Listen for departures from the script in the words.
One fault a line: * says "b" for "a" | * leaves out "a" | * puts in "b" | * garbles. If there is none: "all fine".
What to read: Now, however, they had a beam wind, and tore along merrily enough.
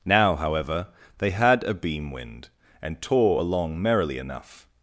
all fine